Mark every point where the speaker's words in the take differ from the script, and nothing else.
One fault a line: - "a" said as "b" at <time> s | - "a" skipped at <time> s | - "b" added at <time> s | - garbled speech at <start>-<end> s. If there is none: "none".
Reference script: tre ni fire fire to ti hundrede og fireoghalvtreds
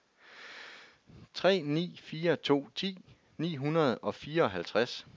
- "fire" skipped at 2.4 s
- "ni" added at 3.4 s